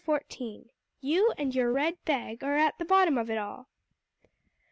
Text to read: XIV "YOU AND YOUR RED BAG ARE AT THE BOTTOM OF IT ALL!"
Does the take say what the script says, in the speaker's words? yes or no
yes